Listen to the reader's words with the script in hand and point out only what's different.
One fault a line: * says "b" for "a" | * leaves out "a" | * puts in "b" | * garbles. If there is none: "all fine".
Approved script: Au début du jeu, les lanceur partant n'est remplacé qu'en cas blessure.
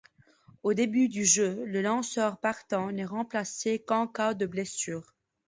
* says "le" for "les"
* puts in "de"